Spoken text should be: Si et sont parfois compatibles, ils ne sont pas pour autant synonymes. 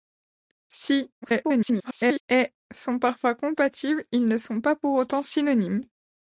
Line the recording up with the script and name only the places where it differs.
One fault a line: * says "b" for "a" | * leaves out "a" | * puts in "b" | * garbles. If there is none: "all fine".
* garbles